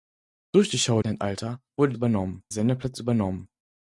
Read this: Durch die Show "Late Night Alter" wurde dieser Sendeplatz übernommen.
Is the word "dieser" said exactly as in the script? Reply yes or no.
no